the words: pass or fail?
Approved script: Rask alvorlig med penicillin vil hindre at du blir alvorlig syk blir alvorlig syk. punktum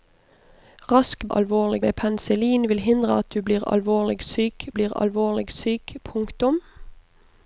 pass